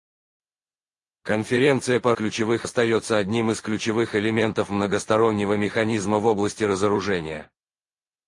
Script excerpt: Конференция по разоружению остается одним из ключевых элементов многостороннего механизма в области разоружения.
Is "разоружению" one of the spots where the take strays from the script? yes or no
yes